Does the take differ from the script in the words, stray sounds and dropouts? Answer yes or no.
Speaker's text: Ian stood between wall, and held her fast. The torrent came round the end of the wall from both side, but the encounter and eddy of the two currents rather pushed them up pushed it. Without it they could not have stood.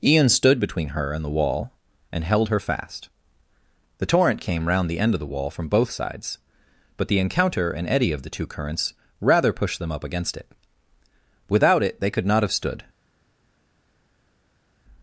yes